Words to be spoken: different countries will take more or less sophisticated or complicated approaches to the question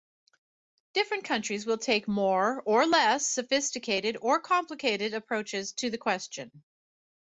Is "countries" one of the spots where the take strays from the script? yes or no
no